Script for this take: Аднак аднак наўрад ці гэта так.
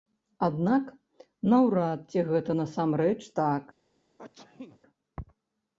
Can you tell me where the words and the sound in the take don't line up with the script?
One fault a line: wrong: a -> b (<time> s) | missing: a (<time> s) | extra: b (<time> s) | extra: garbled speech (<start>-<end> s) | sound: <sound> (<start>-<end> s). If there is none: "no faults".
missing: аднак (0.8 s)
extra: насамрэч (2.6 s)
sound: sneeze (4.2-4.8 s)